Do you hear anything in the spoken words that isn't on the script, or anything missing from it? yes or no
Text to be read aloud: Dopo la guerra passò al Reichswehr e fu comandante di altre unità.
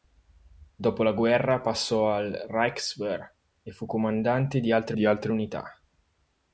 yes